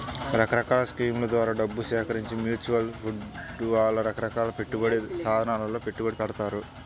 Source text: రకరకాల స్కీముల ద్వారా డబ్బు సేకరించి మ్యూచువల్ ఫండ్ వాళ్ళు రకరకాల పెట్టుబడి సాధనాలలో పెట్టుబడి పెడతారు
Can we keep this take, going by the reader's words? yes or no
yes